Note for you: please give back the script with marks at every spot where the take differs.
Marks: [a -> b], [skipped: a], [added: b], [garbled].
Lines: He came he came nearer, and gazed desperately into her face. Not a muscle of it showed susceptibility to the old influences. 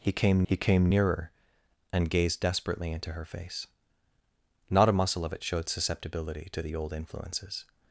He came he came nearer, and gazed desperately into her face. Not a muscle of it showed susceptibility to the old influences.